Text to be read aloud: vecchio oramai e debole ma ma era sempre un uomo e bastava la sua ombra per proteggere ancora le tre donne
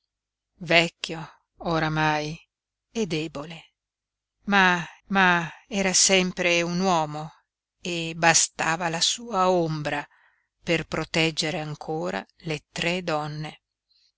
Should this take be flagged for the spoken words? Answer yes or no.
no